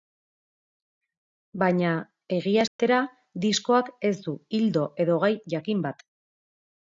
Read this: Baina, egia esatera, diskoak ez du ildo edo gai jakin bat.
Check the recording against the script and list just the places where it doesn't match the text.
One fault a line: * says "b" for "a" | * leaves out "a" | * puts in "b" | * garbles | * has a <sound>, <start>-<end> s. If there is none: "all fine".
* has a dropout, 2.7-2.8 s